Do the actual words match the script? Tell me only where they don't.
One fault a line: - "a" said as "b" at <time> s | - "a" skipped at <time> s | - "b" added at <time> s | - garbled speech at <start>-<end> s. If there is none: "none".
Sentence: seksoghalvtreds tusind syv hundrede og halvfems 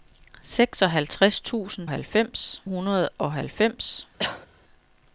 - "syv" said as "halvfems" at 1.9 s